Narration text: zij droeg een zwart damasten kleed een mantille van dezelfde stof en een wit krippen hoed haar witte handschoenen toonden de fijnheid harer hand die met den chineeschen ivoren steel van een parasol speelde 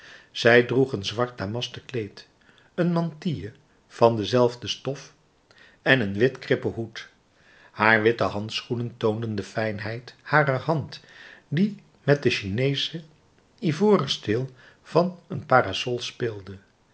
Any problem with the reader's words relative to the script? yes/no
no